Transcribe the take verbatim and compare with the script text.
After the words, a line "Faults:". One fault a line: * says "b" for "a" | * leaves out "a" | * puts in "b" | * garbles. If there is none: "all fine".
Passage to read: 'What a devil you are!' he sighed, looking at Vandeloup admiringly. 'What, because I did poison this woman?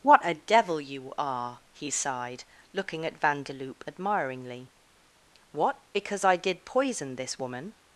'What a devil you are!' he sighed, looking at Vandeloup admiringly. 'What, because I did poison this woman?
Faults:
all fine